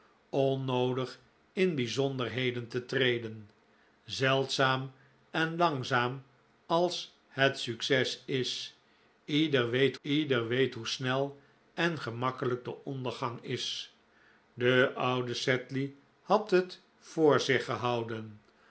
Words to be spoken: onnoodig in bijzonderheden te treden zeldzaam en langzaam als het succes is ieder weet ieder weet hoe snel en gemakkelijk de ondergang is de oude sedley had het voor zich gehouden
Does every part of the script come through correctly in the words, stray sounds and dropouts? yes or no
yes